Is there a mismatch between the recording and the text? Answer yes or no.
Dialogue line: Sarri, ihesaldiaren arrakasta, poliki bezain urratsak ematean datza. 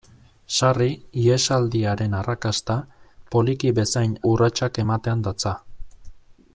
no